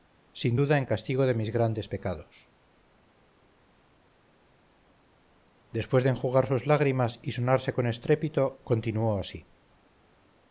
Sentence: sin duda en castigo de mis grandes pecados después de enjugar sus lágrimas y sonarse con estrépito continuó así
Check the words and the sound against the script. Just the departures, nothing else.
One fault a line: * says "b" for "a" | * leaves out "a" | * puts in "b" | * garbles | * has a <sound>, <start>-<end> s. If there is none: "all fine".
all fine